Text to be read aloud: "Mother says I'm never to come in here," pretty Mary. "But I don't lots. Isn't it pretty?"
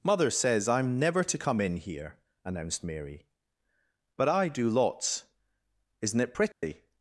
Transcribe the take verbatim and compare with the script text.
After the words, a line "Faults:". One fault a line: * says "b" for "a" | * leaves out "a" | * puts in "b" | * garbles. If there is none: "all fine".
"Mother says I'm never to come in here," announced Mary. "But I do lots. Isn't it pretty?"
Faults:
* says "announced" for "pretty"
* says "do" for "don't"